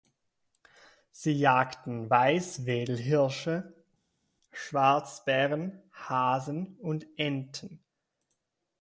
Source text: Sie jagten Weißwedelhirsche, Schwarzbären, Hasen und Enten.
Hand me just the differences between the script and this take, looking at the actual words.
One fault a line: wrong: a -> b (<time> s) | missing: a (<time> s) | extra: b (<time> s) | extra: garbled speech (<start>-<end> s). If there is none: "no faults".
no faults